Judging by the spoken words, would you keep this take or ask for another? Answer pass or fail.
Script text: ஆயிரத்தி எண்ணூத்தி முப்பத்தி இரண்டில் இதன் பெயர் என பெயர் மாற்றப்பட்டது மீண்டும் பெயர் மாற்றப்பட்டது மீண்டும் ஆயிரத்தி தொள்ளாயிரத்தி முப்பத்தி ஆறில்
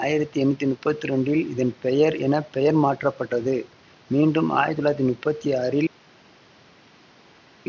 fail